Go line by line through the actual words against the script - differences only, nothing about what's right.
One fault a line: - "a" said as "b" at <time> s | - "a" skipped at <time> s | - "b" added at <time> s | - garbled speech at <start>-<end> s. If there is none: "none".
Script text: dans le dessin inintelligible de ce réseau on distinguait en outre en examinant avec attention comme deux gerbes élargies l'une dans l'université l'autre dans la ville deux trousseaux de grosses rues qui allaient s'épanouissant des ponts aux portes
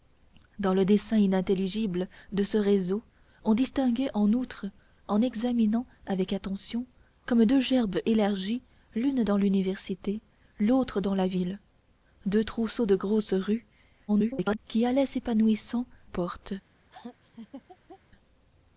- garbled speech at 14.1-14.6 s
- "des ponts aux" skipped at 15.9 s